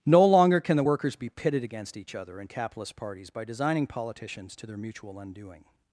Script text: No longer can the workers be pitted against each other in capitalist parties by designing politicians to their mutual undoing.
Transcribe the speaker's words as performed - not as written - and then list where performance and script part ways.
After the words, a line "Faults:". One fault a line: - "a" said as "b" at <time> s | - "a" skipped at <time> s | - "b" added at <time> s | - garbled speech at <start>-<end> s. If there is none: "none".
No longer can the workers be pitted against each other in capitalist parties by designing politicians to their mutual undoing.
Faults:
none